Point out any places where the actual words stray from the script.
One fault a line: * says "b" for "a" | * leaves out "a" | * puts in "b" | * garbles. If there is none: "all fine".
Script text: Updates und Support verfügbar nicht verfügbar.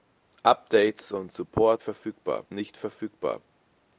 all fine